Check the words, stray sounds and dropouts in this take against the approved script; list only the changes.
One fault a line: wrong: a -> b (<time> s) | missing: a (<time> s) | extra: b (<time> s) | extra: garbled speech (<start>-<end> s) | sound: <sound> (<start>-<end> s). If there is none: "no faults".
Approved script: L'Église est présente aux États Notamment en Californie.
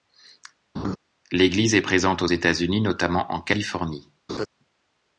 sound: laugh (0.7-1.0 s)
extra: Unis (2.5 s)
sound: laugh (4.3-4.5 s)